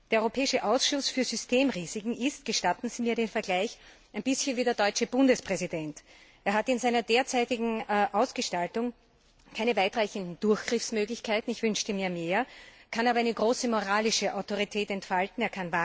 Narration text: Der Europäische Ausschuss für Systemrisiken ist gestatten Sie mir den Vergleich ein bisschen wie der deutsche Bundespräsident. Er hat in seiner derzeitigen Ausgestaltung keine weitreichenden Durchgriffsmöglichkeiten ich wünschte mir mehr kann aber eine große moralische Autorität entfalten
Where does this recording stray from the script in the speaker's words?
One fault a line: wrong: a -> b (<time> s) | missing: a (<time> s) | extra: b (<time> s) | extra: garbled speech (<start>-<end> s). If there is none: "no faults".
no faults